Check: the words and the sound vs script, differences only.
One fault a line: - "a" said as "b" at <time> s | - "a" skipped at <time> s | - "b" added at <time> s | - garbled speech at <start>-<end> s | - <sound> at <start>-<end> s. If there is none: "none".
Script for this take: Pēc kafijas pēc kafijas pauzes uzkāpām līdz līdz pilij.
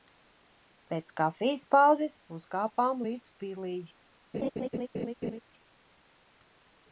- "pēc kafijas" skipped at 1.6 s
- "līdz" skipped at 3.4 s
- laugh at 4.3-5.4 s